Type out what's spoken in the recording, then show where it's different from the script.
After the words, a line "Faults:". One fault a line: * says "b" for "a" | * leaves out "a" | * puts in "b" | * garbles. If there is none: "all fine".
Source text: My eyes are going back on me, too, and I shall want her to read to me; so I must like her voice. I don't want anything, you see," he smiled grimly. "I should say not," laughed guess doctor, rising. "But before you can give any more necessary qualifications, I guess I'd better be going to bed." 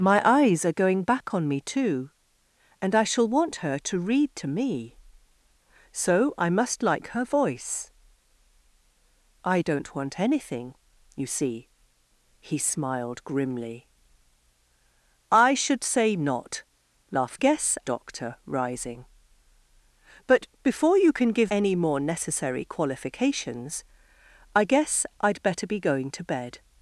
My eyes are going back on me, too, and I shall want her to read to me; so I must like her voice. I don't want anything, you see," he smiled grimly. "I should say not," laughed guess doctor, rising. "But before you can give any more necessary qualifications, I guess I'd better be going to bed."
Faults:
all fine